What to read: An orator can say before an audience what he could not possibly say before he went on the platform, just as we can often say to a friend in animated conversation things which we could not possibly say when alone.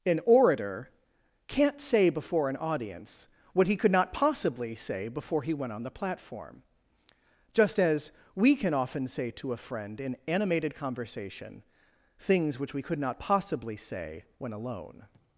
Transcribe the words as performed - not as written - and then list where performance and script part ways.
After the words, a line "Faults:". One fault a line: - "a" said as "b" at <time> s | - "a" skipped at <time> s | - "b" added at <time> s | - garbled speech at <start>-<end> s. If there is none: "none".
An orator can't say before an audience what he could not possibly say before he went on the platform, just as we can often say to a friend in animated conversation things which we could not possibly say when alone.
Faults:
- "can" said as "can't" at 1.5 s